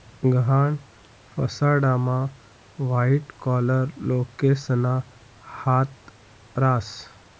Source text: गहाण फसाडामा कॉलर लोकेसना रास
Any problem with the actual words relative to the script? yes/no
yes